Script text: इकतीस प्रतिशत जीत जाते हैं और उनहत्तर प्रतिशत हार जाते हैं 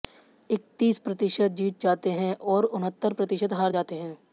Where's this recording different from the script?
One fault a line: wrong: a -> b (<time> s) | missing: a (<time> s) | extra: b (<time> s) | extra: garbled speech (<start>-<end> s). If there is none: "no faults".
no faults